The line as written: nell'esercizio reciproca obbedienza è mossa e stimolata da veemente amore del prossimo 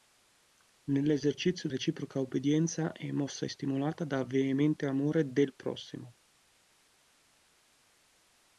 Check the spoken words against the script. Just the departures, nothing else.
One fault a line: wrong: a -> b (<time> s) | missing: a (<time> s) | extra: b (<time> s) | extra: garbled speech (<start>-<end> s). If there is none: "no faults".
no faults